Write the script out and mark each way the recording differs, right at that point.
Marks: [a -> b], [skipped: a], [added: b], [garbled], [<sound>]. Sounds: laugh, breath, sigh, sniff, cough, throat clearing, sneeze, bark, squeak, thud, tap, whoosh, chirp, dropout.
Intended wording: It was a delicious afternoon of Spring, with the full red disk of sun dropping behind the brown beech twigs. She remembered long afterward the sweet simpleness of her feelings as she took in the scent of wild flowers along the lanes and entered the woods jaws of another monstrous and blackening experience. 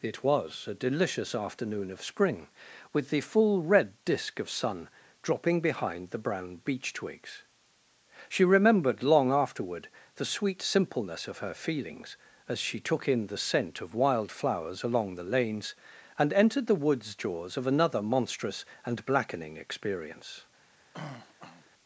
It was a delicious afternoon of Spring, with the full red disk of sun dropping behind the brown beech twigs. She remembered long afterward the sweet simpleness of her feelings as she took in the scent of wild flowers along the lanes and entered the woods jaws of another monstrous and blackening experience. [throat clearing]